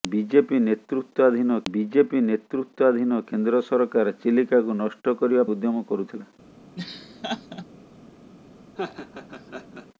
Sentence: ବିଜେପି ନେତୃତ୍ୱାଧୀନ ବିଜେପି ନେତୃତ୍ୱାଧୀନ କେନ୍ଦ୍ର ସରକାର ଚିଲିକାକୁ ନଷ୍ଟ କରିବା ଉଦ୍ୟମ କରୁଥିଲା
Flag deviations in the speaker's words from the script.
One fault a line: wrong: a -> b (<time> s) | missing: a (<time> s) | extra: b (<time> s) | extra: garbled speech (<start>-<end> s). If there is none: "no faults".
no faults